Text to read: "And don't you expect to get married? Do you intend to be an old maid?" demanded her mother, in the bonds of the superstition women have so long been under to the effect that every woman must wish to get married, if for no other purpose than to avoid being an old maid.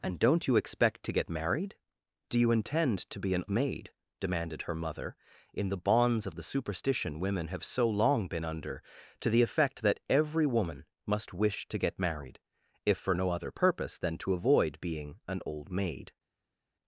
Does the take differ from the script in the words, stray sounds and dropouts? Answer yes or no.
yes